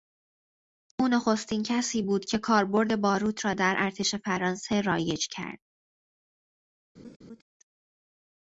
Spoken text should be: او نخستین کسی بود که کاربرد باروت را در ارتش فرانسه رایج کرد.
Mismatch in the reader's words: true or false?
false